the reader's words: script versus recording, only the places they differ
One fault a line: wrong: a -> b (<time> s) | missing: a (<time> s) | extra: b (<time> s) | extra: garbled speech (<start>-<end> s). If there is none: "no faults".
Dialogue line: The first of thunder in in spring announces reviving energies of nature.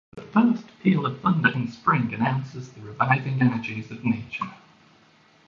extra: peal (0.8 s)
missing: in (1.7 s)
extra: the (2.7 s)